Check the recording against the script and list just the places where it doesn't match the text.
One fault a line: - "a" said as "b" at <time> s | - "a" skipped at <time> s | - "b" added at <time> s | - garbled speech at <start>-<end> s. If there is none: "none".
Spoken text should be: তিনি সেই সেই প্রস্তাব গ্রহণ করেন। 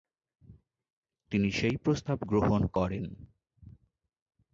- "সেই" skipped at 1.8 s